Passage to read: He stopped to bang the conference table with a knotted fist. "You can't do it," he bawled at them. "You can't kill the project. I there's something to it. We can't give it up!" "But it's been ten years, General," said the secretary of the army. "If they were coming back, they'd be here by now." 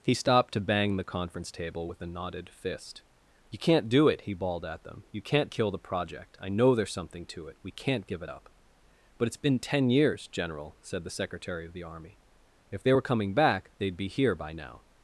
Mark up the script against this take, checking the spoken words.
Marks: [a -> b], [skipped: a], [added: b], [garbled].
He stopped to bang the conference table with a knotted fist. "You can't do it," he bawled at them. "You can't kill the project. I [added: know] there's something to it. We can't give it up!" "But it's been ten years, General," said the secretary of the army. "If they were coming back, they'd be here by now."